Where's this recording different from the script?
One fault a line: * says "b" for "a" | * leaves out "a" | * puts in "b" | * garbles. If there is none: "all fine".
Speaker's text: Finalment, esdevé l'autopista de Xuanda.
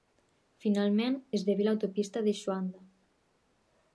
all fine